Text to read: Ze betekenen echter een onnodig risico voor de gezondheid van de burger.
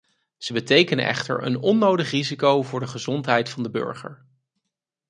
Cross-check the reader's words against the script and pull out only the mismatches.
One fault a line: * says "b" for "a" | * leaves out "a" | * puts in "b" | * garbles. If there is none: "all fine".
all fine